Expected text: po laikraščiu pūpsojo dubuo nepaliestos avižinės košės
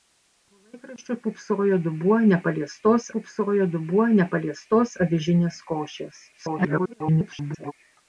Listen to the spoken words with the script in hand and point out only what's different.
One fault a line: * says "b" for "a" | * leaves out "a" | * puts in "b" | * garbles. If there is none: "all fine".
* puts in "pūpsojo dubuo nepaliestos"
* garbles